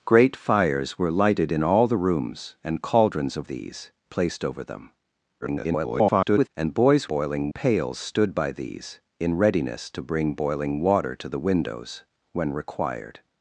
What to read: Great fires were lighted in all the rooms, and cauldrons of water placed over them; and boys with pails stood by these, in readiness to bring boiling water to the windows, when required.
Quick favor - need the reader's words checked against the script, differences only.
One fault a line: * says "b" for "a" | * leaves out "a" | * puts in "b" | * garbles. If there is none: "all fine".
* says "these" for "water"
* garbles
* says "boiling" for "with"